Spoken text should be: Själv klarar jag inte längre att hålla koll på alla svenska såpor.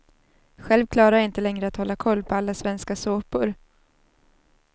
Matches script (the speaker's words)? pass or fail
pass